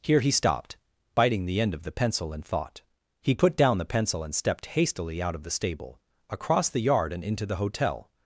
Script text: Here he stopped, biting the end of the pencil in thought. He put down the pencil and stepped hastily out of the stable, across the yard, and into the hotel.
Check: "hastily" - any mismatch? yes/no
no